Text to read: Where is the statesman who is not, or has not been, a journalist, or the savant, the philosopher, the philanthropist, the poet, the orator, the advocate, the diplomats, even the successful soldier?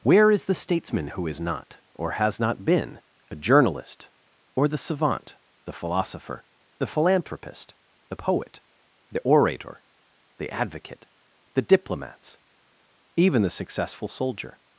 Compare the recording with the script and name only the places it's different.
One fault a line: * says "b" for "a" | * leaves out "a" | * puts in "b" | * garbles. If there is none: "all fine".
all fine